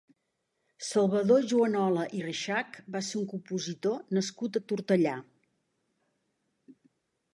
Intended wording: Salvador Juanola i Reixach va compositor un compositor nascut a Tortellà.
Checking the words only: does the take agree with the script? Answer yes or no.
no